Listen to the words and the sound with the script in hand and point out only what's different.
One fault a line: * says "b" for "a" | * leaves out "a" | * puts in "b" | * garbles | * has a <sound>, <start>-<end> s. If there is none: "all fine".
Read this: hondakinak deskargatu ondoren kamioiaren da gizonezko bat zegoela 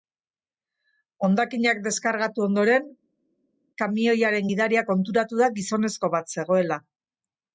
* puts in "gidaria konturatu"